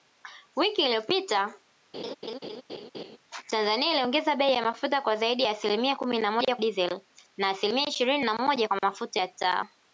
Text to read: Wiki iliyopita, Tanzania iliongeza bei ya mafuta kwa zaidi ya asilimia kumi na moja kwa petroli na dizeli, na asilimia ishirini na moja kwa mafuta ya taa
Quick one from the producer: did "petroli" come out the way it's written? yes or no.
no